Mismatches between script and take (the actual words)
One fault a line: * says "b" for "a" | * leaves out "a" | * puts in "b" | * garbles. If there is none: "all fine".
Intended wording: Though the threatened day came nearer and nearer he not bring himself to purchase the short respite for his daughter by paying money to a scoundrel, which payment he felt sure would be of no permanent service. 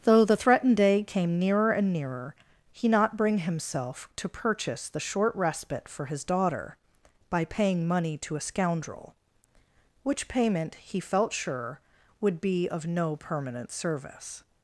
all fine